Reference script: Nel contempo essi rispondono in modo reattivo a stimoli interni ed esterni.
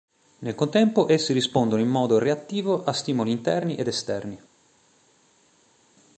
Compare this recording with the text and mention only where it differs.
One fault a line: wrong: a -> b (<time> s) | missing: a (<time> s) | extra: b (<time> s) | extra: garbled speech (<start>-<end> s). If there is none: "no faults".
no faults